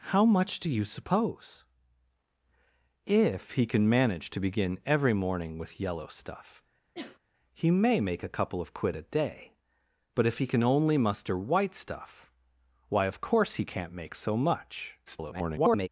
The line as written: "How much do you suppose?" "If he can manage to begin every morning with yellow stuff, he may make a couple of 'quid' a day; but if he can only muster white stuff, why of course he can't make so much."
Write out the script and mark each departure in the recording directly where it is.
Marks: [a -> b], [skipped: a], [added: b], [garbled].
"How much do you suppose?" "If he can manage to begin every morning with yellow stuff, he may make a couple of 'quid' a day; but if he can only muster white stuff, why of course he can't make so much." [garbled]